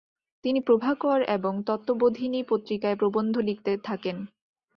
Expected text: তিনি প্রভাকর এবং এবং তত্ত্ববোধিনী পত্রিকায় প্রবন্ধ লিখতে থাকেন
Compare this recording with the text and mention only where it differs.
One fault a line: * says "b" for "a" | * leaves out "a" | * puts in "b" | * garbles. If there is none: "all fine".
* leaves out "এবং"